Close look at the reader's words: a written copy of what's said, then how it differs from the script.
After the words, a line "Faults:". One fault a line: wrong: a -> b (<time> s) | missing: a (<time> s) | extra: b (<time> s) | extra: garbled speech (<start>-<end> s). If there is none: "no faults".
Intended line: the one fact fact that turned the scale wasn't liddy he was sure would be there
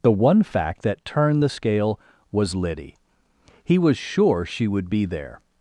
the one fact that turned the scale was liddy he was sure she would be there
Faults:
missing: fact (0.8 s)
wrong: wasn't -> was (2.3 s)
extra: she (4.4 s)